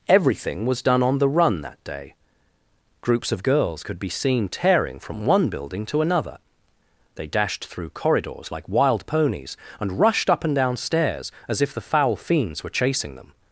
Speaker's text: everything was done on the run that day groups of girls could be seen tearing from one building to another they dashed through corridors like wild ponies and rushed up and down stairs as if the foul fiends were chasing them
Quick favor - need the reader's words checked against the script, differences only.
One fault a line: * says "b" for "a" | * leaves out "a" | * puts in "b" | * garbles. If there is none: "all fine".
all fine